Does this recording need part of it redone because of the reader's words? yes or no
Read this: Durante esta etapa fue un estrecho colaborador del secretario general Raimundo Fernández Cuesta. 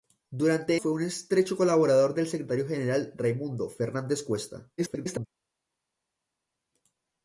yes